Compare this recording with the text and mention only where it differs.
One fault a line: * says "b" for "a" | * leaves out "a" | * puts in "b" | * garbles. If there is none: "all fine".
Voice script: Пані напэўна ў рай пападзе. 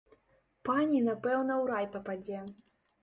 all fine